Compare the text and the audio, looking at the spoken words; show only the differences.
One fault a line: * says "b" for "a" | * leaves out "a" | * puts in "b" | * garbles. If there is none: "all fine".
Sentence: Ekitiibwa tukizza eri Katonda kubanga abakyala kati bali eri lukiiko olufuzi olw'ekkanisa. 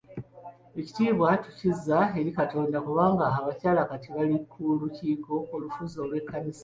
* says "ku" for "eri"